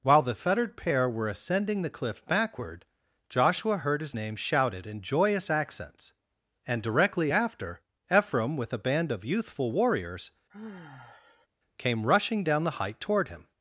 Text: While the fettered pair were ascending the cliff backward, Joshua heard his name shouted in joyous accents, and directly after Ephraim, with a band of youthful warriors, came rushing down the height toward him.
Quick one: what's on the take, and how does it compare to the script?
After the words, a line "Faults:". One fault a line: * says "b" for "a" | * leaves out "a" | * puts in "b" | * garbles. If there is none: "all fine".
While the fettered pair were ascending the cliff backward, Joshua heard his name shouted in joyous accents, and directly after Ephraim, with a band of youthful warriors, came rushing down the height toward him.
Faults:
all fine